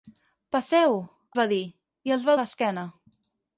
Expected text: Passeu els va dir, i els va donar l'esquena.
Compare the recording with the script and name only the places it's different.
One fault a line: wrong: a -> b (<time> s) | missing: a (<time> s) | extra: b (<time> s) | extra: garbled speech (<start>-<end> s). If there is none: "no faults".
missing: els (0.9 s)
missing: donar (2.4 s)